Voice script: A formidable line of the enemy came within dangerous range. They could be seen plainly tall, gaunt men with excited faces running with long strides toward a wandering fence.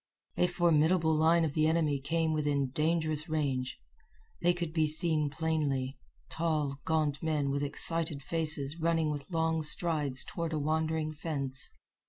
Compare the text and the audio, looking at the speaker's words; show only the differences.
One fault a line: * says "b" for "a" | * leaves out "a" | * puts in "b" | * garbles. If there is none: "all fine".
all fine